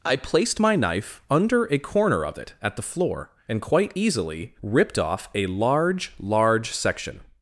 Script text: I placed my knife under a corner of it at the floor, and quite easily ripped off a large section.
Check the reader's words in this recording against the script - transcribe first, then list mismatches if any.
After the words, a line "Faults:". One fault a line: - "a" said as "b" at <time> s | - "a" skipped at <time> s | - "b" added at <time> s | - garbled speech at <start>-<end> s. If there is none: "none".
I placed my knife under a corner of it at the floor, and quite easily ripped off a large large section.
Faults:
- "large" added at 6.2 s